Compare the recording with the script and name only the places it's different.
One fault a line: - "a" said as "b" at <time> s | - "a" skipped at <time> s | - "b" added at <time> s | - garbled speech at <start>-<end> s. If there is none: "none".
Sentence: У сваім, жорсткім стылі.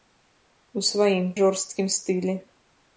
none